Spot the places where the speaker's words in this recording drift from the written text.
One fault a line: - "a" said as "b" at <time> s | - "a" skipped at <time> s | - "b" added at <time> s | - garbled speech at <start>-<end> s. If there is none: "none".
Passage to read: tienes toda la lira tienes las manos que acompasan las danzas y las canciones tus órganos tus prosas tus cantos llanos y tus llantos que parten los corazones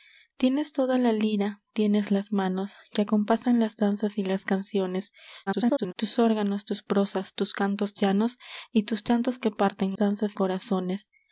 - garbled speech at 5.5-5.9 s
- "los" said as "danzas" at 9.9 s